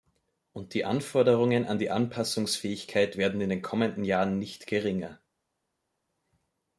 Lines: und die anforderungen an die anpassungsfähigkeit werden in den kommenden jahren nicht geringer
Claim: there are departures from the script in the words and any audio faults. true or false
false